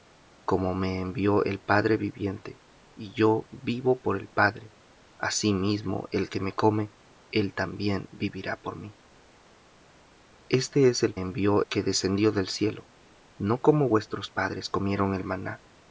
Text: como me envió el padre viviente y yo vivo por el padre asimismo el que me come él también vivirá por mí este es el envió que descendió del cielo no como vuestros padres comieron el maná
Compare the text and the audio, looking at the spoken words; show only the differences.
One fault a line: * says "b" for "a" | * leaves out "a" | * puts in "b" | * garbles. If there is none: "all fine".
all fine